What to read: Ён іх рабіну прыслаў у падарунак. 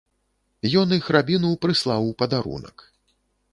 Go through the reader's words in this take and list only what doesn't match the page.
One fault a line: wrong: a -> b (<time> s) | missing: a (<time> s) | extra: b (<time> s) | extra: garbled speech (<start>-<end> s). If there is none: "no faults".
no faults